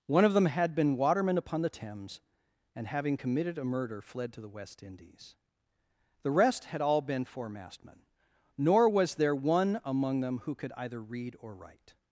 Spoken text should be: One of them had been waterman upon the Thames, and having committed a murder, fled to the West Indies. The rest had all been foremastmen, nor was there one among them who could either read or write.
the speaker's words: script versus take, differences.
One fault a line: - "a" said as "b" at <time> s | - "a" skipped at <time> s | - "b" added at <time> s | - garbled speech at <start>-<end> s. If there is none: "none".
none